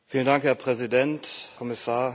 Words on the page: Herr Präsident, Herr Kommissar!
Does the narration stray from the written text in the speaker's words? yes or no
yes